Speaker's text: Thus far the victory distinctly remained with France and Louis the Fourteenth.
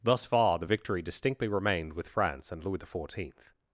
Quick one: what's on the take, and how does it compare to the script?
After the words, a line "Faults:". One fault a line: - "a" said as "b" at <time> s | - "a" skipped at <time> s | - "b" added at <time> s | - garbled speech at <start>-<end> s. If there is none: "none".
Thus far the victory distinctly remained with France and Louis the Fourteenth.
Faults:
none